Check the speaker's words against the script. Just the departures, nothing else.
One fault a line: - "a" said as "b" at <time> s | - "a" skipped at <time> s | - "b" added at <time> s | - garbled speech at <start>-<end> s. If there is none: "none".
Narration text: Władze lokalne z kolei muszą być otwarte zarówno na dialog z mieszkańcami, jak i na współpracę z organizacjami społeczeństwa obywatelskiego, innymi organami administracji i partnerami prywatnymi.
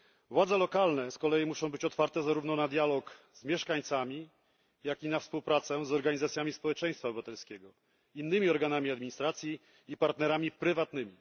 none